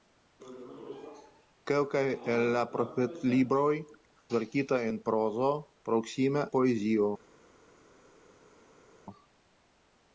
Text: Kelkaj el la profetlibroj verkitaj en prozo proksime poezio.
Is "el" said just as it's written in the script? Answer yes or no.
yes